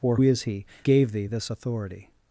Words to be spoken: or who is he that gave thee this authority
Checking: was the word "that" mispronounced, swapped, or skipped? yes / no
yes